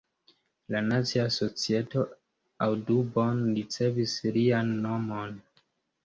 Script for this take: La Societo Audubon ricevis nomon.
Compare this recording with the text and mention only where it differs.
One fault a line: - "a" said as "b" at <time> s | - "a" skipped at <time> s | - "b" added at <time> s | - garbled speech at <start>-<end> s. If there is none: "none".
- "Nacia" added at 0.8 s
- "lian" added at 4.4 s